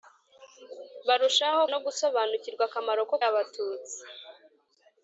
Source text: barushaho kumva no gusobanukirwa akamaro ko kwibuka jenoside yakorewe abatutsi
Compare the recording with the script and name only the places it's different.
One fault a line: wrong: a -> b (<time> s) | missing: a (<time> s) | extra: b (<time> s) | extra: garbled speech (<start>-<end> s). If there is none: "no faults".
missing: kumva (1.6 s)
missing: kwibuka jenoside yakorewe (3.1 s)